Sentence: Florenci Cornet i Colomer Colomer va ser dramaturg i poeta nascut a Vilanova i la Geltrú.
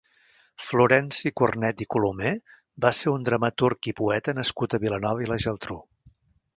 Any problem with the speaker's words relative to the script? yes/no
yes